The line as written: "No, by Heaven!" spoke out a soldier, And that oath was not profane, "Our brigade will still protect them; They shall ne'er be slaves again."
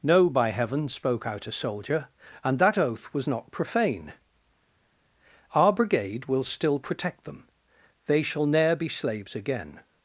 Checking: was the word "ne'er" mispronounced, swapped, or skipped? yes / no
no